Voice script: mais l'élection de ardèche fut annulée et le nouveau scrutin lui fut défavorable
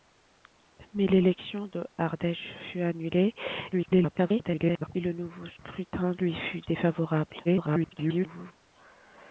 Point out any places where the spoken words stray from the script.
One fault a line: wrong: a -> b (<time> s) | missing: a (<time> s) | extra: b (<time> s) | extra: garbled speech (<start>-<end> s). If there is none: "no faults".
extra: garbled speech (3.7-4.9 s)
extra: garbled speech (7.4-8.5 s)